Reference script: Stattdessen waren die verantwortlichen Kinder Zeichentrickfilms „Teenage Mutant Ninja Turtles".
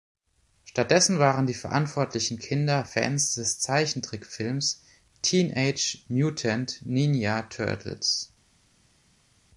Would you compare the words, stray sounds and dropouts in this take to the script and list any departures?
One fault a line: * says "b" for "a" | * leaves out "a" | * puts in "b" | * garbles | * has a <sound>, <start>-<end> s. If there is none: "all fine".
* puts in "Fans des"